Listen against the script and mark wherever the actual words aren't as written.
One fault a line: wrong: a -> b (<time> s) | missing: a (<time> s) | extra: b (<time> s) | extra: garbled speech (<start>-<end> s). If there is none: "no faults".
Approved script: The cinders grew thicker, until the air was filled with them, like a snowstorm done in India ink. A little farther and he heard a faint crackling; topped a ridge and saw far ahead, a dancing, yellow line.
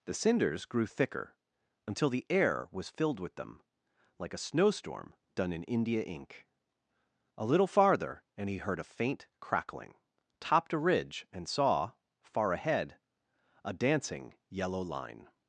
no faults